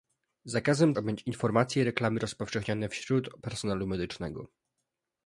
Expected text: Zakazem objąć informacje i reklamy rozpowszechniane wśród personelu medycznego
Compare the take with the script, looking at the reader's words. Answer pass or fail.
pass